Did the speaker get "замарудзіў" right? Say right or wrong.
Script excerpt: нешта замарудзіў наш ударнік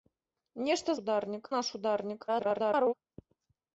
wrong